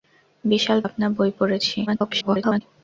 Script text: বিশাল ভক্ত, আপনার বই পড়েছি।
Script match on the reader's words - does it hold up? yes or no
no